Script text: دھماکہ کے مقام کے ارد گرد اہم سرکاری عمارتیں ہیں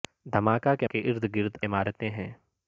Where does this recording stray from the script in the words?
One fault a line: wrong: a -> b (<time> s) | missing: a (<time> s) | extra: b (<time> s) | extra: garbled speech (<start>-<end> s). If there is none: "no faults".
missing: مقام (0.9 s)
missing: اہم سرکاری (1.6 s)